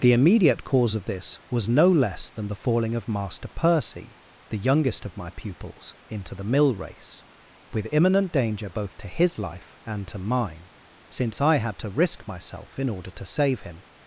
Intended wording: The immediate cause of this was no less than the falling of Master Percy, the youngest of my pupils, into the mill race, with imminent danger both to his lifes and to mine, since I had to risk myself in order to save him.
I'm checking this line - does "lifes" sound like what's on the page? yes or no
no